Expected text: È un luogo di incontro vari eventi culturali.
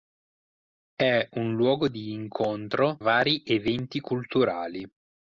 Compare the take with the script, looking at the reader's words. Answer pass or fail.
pass